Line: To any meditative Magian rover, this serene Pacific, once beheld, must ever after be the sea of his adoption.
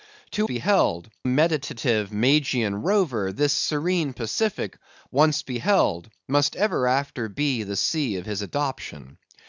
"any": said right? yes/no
no